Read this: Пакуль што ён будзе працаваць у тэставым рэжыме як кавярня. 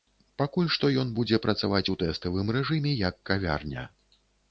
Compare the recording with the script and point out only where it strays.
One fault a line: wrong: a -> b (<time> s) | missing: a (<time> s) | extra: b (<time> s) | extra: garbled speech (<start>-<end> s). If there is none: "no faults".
no faults